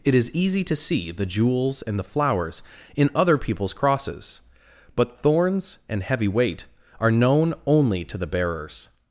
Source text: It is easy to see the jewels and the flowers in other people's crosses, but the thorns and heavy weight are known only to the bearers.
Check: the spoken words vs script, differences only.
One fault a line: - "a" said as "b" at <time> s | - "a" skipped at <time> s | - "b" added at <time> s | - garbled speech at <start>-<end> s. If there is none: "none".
- "the" skipped at 5.2 s